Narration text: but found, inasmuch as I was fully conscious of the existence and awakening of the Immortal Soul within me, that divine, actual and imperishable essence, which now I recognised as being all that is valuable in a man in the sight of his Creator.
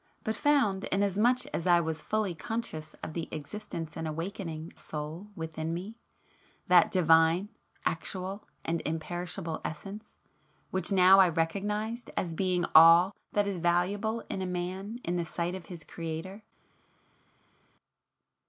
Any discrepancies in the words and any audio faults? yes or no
yes